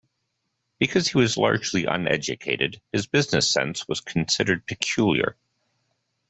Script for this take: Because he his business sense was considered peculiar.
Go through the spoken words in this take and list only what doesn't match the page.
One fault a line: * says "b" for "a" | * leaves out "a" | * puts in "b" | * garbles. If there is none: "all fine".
* puts in "was largely uneducated"